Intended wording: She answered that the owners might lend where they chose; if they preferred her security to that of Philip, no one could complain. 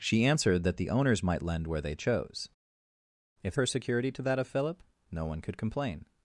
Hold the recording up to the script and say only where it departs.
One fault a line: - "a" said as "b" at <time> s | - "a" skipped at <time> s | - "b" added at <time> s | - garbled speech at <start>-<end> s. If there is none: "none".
- "they preferred" skipped at 3.5 s